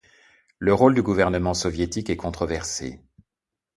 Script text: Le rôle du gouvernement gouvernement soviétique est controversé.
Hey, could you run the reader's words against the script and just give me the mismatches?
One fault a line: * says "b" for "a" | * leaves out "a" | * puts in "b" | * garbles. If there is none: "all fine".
* leaves out "gouvernement"